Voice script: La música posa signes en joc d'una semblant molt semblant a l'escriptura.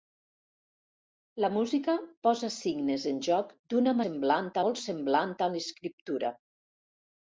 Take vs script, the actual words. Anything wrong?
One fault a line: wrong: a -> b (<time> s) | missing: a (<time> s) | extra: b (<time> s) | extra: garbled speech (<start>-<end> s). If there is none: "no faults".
no faults